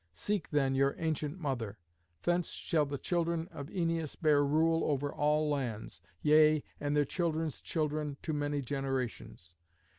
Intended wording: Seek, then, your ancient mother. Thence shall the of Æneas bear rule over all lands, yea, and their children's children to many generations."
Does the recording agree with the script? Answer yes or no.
no